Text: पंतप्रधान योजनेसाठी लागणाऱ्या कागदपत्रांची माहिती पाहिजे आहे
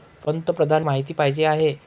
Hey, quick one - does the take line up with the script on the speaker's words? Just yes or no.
no